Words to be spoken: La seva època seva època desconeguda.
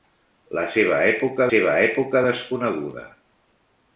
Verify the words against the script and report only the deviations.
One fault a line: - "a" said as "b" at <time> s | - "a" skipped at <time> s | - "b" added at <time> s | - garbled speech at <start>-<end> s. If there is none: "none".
none